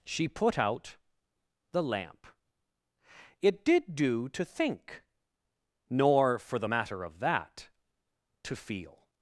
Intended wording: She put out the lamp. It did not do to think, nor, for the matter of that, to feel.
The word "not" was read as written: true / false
false